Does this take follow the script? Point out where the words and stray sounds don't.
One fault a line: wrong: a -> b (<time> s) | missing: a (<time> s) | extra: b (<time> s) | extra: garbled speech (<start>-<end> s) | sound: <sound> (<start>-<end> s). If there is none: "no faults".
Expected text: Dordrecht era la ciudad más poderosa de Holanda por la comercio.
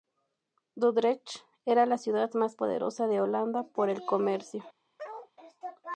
wrong: la -> el (3.9 s)
sound: bark (5.0-5.3 s)